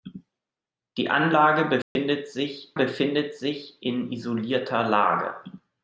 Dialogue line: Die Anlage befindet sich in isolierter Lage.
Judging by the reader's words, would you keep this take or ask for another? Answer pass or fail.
fail